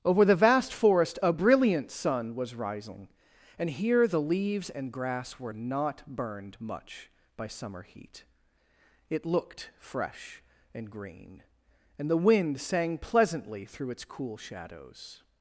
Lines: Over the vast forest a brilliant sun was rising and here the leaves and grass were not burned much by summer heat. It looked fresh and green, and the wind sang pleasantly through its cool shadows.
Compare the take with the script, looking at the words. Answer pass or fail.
pass